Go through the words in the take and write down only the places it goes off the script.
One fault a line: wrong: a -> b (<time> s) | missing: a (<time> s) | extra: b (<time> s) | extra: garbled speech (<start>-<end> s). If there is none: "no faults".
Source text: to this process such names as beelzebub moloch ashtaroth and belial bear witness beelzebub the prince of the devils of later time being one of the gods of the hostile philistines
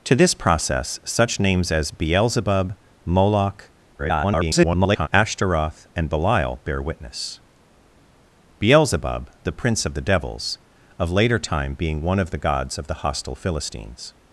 extra: garbled speech (4.0-5.1 s)